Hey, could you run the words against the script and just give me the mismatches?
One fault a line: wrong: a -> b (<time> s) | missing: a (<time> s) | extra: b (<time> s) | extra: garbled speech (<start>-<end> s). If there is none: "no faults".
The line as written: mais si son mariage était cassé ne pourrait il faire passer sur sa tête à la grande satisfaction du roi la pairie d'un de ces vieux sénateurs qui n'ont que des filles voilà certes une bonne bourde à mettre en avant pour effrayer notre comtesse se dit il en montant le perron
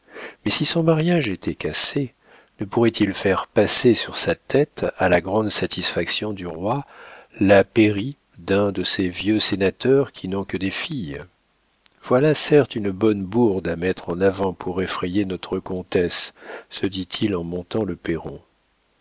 no faults